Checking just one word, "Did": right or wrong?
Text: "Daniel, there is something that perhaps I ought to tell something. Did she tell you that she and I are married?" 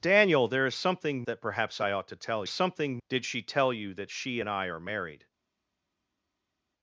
right